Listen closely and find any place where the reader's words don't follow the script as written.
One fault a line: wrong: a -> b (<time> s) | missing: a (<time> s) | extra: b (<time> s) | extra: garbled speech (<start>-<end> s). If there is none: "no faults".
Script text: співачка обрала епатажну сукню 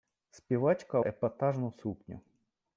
missing: обрала (1.0 s)